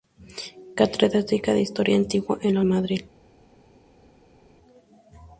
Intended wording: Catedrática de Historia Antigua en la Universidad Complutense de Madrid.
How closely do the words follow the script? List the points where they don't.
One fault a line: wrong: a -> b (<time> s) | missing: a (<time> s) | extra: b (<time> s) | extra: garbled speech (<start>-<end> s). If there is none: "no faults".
missing: Universidad Complutense de (2.6 s)